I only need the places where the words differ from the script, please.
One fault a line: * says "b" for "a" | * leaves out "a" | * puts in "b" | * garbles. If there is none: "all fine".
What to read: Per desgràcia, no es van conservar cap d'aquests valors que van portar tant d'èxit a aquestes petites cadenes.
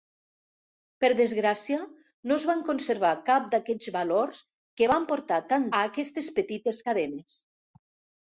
* leaves out "d'èxit"